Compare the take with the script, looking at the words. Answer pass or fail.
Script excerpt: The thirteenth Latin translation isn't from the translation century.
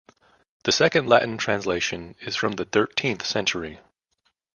fail